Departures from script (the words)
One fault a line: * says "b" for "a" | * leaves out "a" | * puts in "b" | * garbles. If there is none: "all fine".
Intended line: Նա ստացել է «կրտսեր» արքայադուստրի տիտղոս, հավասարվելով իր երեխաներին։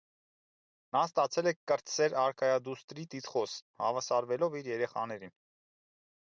all fine